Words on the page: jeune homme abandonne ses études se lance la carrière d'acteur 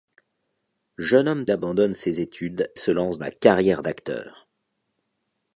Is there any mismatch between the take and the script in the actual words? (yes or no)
no